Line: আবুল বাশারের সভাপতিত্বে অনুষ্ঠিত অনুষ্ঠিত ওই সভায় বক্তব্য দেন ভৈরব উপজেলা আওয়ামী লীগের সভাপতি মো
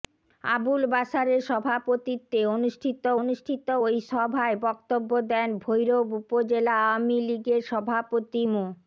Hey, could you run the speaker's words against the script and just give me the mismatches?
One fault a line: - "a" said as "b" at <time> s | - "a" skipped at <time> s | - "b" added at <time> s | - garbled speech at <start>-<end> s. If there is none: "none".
none